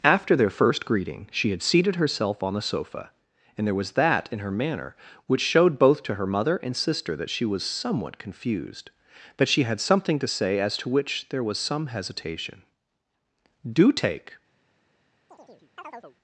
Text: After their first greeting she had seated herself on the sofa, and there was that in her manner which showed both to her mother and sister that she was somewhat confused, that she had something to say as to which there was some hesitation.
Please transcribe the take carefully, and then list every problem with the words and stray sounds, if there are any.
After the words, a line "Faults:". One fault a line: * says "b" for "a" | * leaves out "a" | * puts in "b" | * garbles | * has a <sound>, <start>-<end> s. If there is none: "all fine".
After their first greeting she had seated herself on the sofa, and there was that in her manner which showed both to her mother and sister that she was somewhat confused, that she had something to say as to which there was some hesitation. "Do take
Faults:
* puts in "Do take"
* has a chirp, 15.3-16.2 s